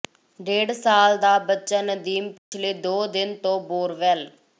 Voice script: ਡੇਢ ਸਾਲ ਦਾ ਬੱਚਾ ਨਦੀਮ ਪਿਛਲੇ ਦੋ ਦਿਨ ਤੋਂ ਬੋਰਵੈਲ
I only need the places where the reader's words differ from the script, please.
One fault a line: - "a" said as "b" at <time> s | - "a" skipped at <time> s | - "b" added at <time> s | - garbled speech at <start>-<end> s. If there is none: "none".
none